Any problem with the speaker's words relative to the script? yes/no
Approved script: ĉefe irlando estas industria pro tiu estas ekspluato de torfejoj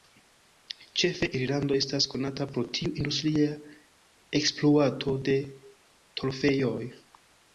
yes